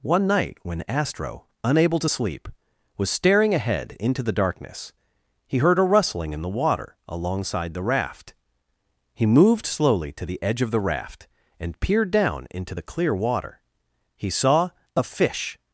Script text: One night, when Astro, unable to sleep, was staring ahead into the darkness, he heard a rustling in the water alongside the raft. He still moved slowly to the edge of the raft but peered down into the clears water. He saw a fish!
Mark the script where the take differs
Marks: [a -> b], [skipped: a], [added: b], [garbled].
One night, when Astro, unable to sleep, was staring ahead into the darkness, he heard a rustling in the water alongside the raft. He [skipped: still] moved slowly to the edge of the raft [but -> and] peered down into the [clears -> clear] water. He saw a fish!